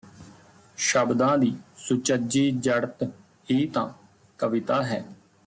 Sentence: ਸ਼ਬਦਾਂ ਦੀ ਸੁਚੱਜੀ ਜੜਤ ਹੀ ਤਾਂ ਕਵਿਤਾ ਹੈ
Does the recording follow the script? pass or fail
pass